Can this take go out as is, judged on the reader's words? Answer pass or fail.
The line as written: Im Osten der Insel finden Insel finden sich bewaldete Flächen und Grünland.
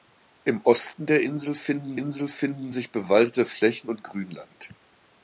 pass